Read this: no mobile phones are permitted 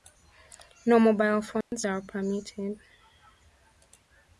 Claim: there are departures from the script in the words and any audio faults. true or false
true